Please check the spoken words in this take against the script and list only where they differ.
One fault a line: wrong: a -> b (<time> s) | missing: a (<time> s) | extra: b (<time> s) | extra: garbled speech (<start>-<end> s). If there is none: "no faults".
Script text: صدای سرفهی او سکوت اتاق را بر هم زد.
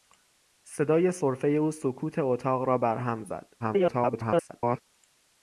extra: garbled speech (3.6-4.8 s)